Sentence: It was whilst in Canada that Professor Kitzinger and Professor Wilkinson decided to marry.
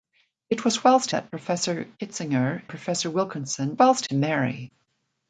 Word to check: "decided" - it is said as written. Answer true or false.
false